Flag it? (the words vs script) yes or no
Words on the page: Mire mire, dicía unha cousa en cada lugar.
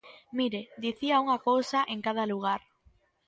yes